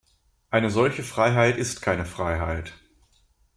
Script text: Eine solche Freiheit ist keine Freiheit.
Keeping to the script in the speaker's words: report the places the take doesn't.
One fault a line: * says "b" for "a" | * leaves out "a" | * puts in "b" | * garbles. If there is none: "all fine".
all fine